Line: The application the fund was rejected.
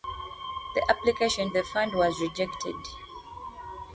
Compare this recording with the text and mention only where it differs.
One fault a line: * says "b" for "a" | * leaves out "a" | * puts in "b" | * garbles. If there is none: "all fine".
all fine